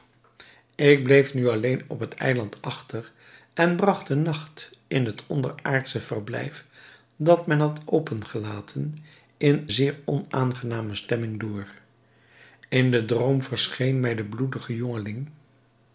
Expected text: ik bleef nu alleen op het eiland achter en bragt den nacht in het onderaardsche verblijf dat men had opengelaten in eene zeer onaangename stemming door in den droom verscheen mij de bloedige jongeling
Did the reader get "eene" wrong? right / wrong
wrong